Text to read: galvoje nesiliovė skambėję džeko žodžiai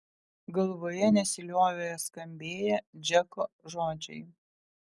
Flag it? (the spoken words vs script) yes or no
no